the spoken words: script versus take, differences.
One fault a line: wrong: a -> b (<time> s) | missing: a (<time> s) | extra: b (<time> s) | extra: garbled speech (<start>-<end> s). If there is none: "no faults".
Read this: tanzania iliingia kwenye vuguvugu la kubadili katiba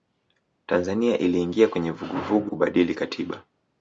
missing: la (2.5 s)